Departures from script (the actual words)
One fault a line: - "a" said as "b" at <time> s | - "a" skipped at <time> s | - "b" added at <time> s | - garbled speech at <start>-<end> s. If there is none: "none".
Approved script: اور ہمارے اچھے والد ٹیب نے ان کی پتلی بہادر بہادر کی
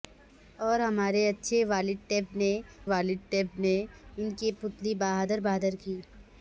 - "والد ٹیب نے" added at 2.8 s